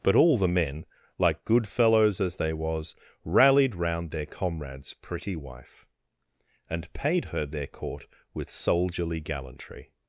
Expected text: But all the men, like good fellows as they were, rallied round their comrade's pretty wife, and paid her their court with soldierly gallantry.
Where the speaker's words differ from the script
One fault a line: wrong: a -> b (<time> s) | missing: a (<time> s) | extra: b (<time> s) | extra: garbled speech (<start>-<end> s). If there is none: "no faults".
wrong: were -> was (2.5 s)